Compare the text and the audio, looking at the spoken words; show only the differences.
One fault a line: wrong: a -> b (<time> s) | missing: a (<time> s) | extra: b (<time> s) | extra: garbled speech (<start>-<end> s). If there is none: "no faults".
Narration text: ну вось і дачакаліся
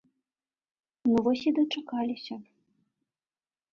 no faults